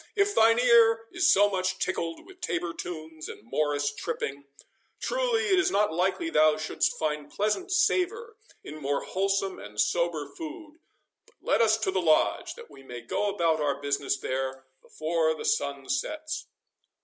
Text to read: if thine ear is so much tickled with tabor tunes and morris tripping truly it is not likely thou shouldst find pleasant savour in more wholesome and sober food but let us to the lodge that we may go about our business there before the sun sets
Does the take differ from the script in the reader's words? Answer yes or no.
no